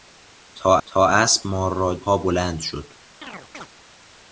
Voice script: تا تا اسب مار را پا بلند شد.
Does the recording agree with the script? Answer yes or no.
yes